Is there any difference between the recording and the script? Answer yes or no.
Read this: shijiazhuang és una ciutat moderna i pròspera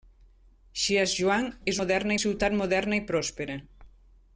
yes